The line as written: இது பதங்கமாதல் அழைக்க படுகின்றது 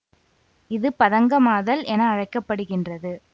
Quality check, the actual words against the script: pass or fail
fail